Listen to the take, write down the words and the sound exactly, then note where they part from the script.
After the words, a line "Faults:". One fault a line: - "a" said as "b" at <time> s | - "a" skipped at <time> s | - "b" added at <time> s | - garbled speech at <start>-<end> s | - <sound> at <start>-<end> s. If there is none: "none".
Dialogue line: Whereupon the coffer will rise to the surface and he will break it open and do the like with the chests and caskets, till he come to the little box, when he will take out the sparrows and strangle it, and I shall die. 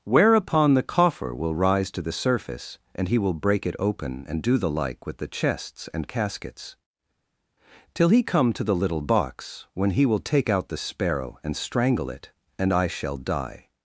Whereupon the coffer will rise to the surface and he will break it open and do the like with the chests and caskets, till he come to the little box, when he will take out the sparrow and strangle it, and I shall die.
Faults:
- "sparrows" said as "sparrow" at 10.8 s